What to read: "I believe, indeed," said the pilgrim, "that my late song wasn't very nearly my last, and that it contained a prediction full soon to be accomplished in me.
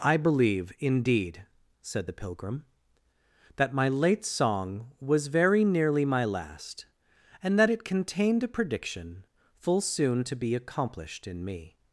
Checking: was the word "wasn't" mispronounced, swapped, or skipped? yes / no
yes